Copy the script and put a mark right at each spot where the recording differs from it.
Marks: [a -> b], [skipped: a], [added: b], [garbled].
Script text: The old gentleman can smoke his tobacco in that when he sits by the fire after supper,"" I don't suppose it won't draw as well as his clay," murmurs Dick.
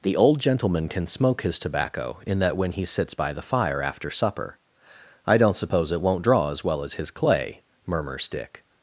The old gentleman can smoke his tobacco in that when he sits by the fire after supper,"" I don't suppose it won't draw as well as his clay," murmurs Dick.